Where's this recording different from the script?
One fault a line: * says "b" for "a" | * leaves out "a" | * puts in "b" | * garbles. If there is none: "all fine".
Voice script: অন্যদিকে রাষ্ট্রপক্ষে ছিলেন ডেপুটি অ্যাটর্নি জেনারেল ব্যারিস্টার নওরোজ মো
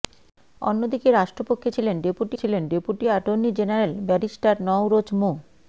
* puts in "ছিলেন ডেপুটি"